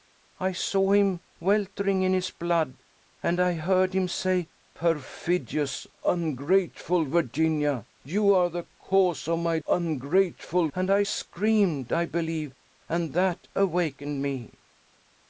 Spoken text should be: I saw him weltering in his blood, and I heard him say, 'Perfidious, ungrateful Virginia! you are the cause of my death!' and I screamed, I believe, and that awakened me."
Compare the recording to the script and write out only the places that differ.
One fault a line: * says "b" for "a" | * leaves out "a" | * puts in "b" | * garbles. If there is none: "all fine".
* says "ungrateful" for "death"